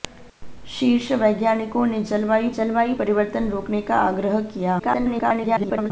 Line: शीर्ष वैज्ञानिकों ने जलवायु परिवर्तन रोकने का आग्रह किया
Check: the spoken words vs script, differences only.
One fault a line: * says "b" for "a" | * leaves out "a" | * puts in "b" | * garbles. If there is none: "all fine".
* puts in "जलवायु"
* garbles